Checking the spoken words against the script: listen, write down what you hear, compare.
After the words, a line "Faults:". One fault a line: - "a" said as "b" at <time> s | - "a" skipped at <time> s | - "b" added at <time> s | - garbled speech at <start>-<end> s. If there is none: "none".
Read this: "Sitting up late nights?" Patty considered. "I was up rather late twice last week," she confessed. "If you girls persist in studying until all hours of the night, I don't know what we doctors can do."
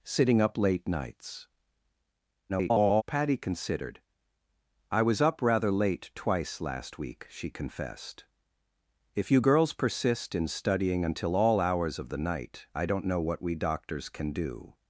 "Sitting up late nights?" [garbled] Patty considered. "I was up rather late twice last week," she confessed. "If you girls persist in studying until all hours of the night, I don't know what we doctors can do."
Faults:
- garbled speech at 2.5-3.0 s